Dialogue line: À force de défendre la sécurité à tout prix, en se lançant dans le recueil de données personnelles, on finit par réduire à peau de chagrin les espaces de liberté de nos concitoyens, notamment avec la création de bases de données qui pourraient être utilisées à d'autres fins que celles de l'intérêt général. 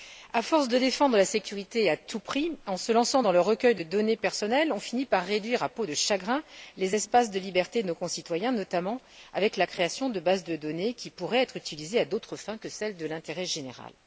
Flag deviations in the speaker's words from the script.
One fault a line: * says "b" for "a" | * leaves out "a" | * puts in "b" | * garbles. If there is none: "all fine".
all fine